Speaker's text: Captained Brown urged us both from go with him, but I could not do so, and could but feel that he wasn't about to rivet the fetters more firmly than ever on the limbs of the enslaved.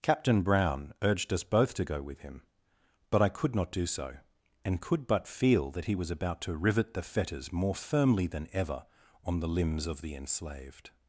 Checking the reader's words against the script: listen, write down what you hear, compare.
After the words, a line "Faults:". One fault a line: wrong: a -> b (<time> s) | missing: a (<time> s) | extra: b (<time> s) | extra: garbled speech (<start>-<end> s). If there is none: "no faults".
Captain Brown urged us both to go with him, but I could not do so, and could but feel that he was about to rivet the fetters more firmly than ever on the limbs of the enslaved.
Faults:
wrong: Captained -> Captain (0.0 s)
wrong: from -> to (1.8 s)
wrong: wasn't -> was (6.0 s)